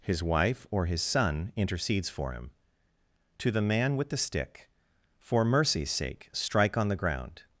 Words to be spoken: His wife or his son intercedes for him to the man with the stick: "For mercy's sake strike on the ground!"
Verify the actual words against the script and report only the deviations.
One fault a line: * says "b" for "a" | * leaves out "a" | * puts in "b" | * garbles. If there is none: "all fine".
all fine